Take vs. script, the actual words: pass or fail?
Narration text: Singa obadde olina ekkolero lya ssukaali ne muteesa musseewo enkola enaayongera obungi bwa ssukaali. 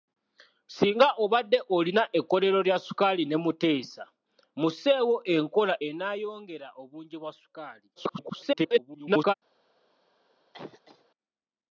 fail